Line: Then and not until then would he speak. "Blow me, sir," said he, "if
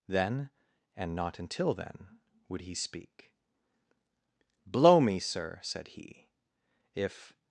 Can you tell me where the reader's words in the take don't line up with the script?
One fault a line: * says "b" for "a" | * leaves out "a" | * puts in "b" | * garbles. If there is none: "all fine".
all fine